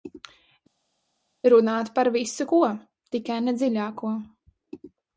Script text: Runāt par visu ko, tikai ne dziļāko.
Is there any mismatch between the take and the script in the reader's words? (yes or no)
no